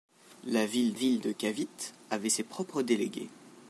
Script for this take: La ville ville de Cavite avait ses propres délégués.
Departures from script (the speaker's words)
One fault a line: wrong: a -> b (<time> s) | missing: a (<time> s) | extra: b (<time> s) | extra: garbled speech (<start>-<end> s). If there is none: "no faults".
no faults